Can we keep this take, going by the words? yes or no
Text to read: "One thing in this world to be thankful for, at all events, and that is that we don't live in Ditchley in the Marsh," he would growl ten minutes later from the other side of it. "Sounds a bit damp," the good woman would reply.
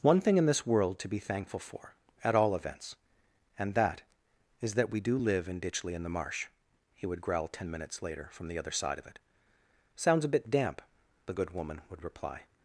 no